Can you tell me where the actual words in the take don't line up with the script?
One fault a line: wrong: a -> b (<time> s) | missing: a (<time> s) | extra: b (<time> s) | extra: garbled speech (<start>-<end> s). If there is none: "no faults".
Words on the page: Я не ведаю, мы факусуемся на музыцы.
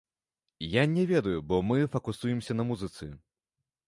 extra: бо (1.4 s)